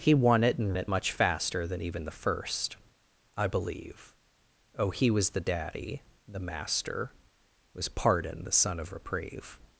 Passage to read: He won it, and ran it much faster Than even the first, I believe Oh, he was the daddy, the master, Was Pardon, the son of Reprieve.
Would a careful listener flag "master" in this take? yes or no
no